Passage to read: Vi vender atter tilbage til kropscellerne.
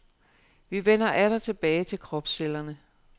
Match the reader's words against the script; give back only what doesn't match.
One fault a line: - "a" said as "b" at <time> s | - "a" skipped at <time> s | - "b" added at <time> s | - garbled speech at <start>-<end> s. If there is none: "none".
none